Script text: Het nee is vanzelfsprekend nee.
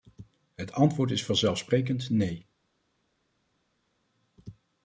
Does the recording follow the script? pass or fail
fail